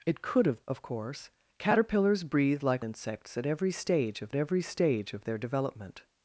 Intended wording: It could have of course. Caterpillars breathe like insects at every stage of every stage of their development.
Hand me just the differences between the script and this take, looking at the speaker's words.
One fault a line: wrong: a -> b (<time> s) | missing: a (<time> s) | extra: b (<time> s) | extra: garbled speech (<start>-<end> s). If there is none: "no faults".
no faults